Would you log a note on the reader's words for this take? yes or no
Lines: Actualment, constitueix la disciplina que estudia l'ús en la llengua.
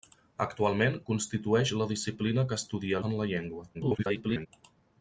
yes